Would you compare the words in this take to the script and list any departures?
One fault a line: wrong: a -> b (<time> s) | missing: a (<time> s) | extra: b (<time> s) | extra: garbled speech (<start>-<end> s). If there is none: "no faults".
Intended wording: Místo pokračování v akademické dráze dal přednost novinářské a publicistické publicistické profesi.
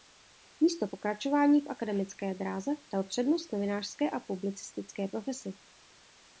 missing: publicistické (5.1 s)